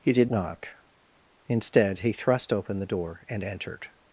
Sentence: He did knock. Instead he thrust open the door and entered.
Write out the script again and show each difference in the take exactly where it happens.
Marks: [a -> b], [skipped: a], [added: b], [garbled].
He did knock. Instead he thrust open the door and entered.